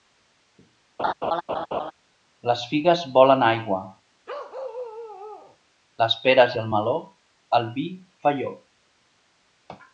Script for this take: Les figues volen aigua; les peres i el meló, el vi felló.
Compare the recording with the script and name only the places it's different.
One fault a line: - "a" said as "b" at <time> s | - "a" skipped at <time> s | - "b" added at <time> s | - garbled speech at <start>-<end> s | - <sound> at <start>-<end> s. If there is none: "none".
- laugh at 1.0-1.9 s
- bark at 4.3-5.6 s